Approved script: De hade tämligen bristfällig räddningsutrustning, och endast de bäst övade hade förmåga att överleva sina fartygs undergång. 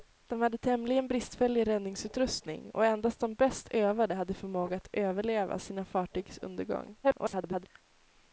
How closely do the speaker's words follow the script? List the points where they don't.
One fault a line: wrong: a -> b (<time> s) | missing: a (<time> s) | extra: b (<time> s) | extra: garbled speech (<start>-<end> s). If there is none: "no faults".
extra: garbled speech (7.0-7.7 s)